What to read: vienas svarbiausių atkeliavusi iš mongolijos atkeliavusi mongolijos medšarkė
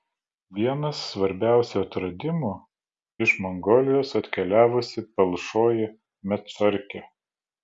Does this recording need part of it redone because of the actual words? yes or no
yes